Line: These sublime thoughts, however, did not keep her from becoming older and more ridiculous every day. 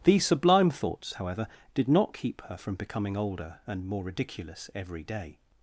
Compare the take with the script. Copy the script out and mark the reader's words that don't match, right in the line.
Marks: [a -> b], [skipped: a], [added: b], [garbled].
These sublime thoughts, however, did not keep her from becoming older and more ridiculous every day.